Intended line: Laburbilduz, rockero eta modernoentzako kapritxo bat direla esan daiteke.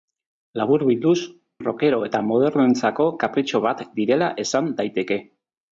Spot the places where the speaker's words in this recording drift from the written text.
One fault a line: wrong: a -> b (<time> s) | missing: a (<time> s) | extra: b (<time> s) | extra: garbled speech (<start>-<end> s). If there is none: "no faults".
no faults